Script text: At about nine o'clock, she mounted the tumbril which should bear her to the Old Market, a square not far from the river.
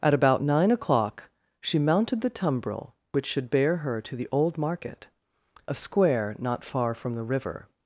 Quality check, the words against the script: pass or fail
pass